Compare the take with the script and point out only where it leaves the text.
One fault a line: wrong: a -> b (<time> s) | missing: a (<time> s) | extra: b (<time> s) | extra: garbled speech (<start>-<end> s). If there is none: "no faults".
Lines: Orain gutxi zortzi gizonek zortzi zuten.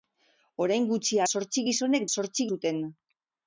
no faults